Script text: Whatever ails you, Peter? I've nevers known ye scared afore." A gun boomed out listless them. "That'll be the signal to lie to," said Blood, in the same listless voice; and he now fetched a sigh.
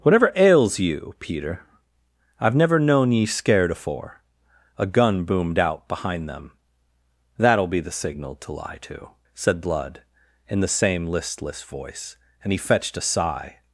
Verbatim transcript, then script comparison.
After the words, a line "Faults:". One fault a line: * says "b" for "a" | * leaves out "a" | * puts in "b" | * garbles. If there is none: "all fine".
Whatever ails you, Peter? I've never known ye scared afore." A gun boomed out behind them. "That'll be the signal to lie to," said Blood, in the same listless voice; and he fetched a sigh.
Faults:
* says "never" for "nevers"
* says "behind" for "listless"
* leaves out "now"